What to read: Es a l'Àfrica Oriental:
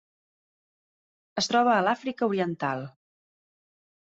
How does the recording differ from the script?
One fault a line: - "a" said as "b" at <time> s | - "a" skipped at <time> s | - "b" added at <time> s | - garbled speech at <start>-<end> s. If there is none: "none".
- "troba" added at 1.5 s